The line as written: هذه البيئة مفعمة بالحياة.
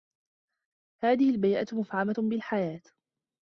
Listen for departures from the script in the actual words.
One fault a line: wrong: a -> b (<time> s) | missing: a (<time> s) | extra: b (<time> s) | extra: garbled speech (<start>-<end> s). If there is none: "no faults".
no faults